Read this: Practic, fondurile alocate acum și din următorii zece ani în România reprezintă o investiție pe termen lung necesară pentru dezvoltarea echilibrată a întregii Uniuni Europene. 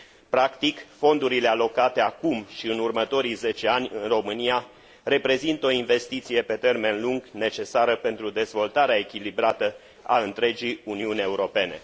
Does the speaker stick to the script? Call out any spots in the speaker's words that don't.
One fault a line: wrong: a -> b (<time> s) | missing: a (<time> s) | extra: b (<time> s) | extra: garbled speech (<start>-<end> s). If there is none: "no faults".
wrong: din -> în (2.7 s)